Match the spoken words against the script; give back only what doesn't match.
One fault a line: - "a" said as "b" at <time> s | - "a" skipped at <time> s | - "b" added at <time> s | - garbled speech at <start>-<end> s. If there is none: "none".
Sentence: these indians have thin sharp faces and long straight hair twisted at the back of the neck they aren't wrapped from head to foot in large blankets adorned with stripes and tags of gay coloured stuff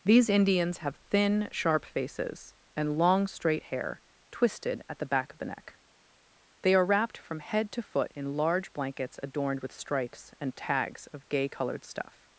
- "aren't" said as "are" at 6.7 s